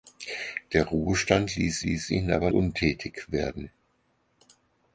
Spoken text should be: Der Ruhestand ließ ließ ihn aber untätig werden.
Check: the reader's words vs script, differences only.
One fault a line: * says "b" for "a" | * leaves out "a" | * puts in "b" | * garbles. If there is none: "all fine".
all fine